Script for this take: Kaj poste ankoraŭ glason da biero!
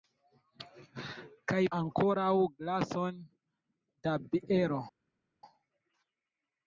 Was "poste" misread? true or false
true